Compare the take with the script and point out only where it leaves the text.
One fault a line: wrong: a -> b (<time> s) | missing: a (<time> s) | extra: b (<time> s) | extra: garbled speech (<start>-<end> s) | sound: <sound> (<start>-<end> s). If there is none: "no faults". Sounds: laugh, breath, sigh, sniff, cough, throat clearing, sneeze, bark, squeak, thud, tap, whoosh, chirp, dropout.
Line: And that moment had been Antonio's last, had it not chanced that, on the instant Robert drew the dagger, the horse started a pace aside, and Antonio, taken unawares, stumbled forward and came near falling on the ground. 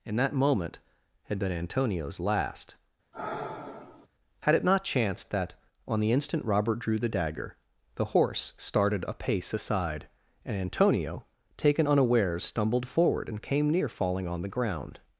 sound: sigh (3.1-4.1 s)